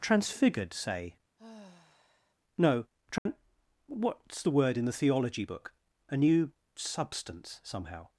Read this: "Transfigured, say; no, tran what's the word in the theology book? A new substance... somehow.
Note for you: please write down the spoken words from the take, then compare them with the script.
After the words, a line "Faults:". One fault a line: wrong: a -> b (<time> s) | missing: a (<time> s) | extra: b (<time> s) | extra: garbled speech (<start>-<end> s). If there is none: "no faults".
"Transfigured, say; no, tran what's the word in the theology book? A new substance... somehow.
Faults:
no faults